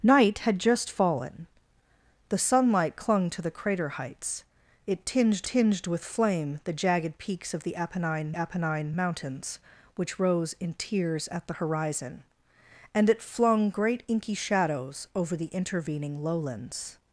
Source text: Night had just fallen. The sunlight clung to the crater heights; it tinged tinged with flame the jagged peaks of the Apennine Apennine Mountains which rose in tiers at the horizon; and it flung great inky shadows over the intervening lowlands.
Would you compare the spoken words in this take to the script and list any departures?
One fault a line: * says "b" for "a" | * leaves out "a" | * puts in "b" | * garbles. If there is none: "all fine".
all fine